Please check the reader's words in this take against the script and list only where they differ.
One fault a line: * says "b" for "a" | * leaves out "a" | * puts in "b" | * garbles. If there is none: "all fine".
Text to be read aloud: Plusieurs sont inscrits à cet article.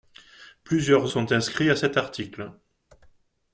all fine